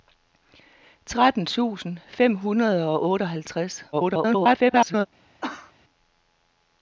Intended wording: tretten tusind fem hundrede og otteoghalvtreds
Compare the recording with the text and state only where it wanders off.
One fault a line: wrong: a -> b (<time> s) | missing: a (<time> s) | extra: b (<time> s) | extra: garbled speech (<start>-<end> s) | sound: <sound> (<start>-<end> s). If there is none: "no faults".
extra: garbled speech (3.9-5.1 s)
sound: cough (5.4-5.7 s)